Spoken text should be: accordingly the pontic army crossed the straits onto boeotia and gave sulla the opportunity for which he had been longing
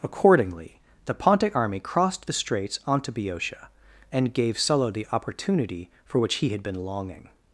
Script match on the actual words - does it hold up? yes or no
yes